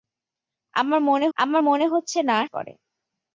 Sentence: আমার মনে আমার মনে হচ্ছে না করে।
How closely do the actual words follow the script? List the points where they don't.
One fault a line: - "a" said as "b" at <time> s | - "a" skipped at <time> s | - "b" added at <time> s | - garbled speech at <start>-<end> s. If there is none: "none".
none